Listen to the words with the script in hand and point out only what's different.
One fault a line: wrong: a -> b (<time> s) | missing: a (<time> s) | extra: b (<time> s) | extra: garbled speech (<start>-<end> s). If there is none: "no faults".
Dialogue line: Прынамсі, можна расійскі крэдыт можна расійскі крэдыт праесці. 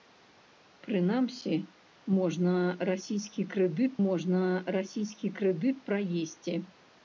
no faults